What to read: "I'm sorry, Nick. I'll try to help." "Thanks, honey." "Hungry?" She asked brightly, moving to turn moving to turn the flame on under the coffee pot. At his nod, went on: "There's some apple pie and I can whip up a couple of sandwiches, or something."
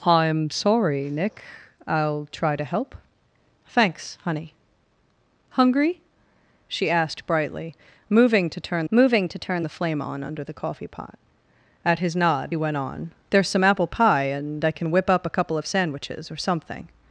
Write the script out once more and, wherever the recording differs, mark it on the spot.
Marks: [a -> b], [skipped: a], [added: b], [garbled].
"I'm sorry, Nick. I'll try to help." "Thanks, honey." "Hungry?" She asked brightly, moving to turn moving to turn the flame on under the coffee pot. At his nod, went on: "There's some apple pie and I can whip up a couple of sandwiches, or something."